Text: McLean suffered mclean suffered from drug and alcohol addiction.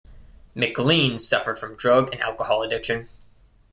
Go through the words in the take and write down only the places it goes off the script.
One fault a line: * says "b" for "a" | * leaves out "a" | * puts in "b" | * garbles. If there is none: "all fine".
* leaves out "mclean suffered"